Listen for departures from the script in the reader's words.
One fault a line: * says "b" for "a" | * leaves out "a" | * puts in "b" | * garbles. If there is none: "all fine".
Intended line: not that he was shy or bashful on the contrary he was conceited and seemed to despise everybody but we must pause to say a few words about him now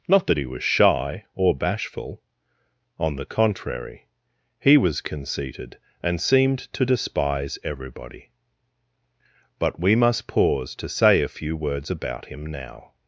all fine